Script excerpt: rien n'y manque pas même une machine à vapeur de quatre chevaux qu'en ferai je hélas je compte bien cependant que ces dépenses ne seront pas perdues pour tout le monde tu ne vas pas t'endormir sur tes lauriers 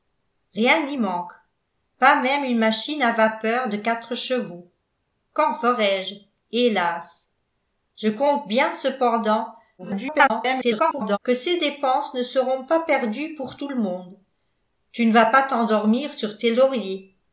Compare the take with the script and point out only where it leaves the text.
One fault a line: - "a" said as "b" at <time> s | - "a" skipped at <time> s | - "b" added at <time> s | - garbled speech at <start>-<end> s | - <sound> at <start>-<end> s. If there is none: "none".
- garbled speech at 9.8-11.2 s